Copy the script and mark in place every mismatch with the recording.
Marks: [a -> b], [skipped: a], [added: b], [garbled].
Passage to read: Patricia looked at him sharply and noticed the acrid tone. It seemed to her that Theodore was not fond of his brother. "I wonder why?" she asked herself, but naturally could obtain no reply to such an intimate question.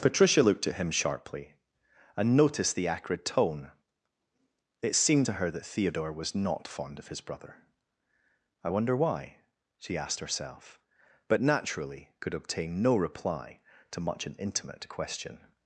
Patricia looked at him sharply and noticed the acrid tone. It seemed to her that Theodore was not fond of his brother. "I wonder why?" she asked herself, but naturally could obtain no reply to [such -> much] an intimate question.